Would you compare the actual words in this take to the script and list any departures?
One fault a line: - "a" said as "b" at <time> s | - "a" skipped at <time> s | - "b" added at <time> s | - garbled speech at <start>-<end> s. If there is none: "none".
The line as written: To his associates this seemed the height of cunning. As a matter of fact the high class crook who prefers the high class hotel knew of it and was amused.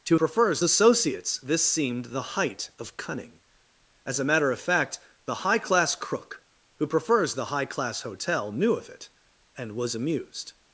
- "his" said as "prefers" at 0.1 s